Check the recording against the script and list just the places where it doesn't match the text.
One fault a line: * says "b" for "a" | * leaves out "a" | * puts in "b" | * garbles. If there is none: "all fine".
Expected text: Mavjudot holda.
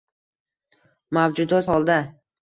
all fine